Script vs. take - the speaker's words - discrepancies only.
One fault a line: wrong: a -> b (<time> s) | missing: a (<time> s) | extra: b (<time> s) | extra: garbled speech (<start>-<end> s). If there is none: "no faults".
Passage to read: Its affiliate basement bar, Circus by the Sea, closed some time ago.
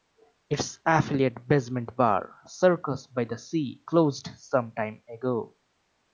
no faults